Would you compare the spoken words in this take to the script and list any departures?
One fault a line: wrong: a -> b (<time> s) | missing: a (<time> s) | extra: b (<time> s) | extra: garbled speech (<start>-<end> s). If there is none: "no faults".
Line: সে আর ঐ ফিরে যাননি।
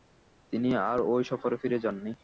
wrong: সে -> তিনি (0.5 s)
extra: সফরে (1.2 s)